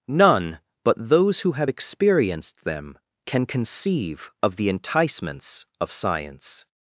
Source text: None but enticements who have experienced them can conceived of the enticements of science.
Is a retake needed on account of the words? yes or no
yes